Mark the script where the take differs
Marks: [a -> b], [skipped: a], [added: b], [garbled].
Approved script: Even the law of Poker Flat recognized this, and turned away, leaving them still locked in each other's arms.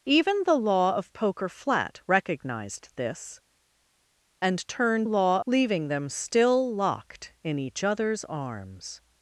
Even the law of Poker Flat recognized this, and turned [away, -> law] leaving them still locked in each other's arms.